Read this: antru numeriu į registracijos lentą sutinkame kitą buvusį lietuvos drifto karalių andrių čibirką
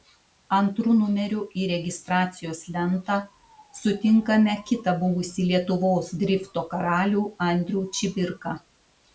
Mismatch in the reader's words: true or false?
false